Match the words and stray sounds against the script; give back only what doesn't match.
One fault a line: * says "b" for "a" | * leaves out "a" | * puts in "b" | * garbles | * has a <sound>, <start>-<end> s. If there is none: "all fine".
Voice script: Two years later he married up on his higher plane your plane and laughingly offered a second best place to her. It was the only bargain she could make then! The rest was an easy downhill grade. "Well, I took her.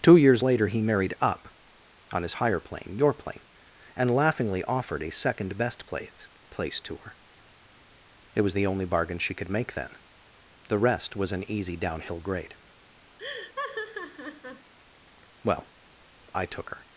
* puts in "place"
* has a laugh, 13.2-14.7 s